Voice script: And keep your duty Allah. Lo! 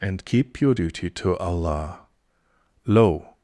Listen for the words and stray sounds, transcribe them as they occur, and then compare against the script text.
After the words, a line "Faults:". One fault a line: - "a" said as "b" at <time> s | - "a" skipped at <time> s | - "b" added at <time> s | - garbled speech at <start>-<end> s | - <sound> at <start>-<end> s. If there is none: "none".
And keep your duty to Allah. Lo!
Faults:
- "to" added at 1.1 s